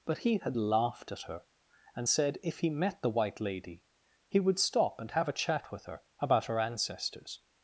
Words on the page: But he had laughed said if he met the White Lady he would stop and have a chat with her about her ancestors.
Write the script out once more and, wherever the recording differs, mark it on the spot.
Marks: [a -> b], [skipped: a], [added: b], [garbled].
But he had laughed [added: at her and] said if he met the White Lady he would stop and have a chat with her about her ancestors.